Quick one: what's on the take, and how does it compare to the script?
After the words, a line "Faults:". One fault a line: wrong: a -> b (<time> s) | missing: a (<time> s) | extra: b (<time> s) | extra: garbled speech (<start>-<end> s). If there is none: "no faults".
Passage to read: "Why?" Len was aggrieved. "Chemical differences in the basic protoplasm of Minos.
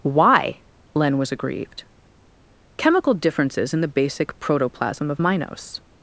"Why?" Len was aggrieved. "Chemical differences in the basic protoplasm of Minos.
Faults:
no faults